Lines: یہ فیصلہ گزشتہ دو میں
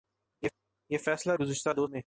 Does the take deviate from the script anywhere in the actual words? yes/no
no